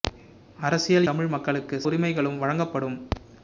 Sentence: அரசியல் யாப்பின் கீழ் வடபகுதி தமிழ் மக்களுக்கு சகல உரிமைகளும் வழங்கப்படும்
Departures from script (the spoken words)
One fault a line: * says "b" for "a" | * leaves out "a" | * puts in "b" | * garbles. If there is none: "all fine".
* leaves out "யாப்பின் கீழ் வடபகுதி"
* leaves out "சகல"